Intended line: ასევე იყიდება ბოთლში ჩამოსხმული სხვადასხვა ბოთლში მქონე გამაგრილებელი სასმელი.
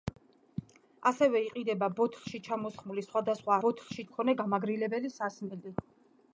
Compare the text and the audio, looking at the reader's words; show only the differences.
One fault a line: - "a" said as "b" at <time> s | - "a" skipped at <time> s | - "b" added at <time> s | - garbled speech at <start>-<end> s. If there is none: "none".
none